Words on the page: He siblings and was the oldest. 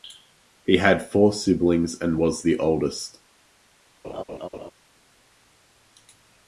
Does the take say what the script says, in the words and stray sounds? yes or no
no